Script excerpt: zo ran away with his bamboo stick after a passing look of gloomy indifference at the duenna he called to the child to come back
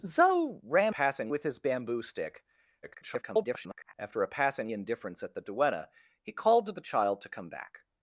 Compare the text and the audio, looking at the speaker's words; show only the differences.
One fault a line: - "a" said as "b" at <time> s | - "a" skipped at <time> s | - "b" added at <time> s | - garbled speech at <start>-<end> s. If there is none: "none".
- "away" said as "passing" at 0.9 s
- garbled speech at 2.8-3.9 s
- "look of gloomy" skipped at 4.7 s